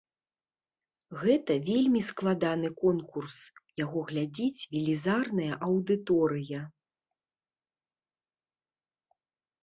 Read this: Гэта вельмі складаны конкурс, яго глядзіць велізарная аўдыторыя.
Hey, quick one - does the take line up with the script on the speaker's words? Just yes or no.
yes